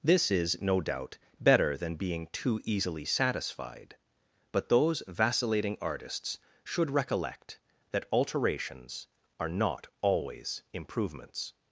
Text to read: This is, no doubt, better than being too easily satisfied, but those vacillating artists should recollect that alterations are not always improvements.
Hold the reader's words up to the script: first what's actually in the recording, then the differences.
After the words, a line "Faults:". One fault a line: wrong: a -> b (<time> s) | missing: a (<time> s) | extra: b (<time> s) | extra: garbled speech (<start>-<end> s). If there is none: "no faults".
This is, no doubt, better than being too easily satisfied, but those vacillating artists should recollect that alterations are not always improvements.
Faults:
no faults